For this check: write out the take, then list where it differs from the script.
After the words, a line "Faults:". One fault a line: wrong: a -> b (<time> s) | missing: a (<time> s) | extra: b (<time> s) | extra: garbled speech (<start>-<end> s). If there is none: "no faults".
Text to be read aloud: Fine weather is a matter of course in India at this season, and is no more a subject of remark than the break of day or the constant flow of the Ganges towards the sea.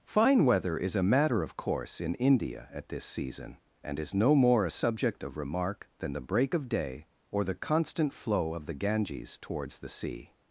Fine weather is a matter of course in India at this season, and is no more a subject of remark than the break of day or the constant flow of the Ganges towards the sea.
Faults:
no faults